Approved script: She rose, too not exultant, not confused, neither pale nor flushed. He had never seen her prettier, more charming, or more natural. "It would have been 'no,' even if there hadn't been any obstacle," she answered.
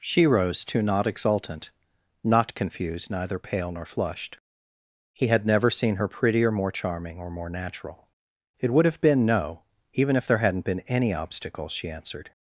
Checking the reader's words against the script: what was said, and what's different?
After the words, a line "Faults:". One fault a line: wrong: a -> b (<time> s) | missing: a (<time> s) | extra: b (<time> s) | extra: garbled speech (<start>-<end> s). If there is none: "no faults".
She rose, too not exultant, not confused, neither pale nor flushed. He had never seen her prettier, more charming, or more natural. "It would have been 'no,' even if there hadn't been any obstacle," she answered.
Faults:
no faults